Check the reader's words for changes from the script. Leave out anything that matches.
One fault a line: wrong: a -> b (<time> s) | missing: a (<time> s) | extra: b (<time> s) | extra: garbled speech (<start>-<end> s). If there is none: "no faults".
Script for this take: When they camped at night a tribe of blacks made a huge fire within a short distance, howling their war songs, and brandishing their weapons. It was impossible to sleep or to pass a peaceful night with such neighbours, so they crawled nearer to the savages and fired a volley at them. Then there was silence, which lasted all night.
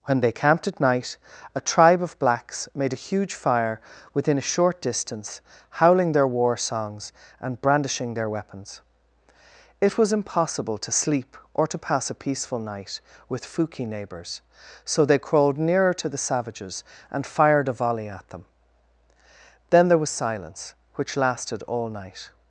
wrong: such -> fuki (13.4 s)